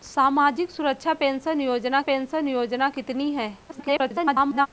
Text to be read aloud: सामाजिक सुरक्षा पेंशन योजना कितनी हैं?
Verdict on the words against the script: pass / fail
fail